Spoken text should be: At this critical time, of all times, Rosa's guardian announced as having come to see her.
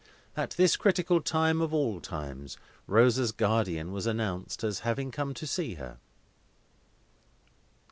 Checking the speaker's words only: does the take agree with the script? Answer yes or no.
no